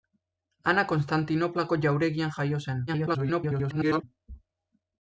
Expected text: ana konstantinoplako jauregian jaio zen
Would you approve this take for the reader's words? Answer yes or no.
no